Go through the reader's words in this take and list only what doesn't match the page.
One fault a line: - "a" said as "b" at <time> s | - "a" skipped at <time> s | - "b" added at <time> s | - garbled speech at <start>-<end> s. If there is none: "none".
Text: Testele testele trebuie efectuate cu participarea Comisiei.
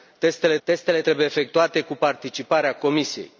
none